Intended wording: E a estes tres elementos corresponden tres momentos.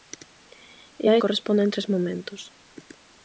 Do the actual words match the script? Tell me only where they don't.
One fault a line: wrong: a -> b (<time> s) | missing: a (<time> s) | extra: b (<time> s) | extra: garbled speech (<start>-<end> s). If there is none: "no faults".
missing: estes tres elementos (1.1 s)